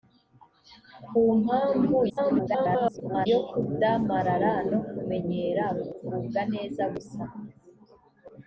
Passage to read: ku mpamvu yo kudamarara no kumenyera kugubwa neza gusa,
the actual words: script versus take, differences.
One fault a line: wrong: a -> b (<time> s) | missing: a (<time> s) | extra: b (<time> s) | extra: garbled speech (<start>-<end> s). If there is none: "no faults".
extra: garbled speech (2.1-3.3 s)